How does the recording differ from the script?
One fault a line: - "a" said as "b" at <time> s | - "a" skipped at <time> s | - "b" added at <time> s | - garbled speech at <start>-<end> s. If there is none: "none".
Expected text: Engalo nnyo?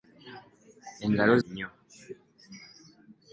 none